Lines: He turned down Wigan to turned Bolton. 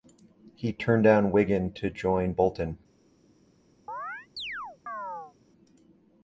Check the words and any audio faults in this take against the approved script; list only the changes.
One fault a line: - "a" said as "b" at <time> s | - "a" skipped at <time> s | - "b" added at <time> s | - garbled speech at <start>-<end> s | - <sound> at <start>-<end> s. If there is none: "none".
- "turned" said as "join" at 1.9 s
- chirp at 3.9-5.3 s